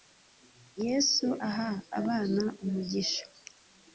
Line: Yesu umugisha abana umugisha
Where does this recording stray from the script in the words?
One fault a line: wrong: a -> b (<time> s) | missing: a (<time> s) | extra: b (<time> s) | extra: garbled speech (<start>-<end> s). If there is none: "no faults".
wrong: umugisha -> aha (1.5 s)